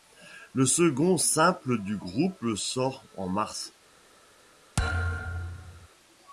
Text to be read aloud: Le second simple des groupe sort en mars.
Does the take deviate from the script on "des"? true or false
true